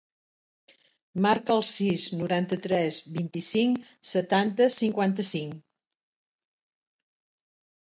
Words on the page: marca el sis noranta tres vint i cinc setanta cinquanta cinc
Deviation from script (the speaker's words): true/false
false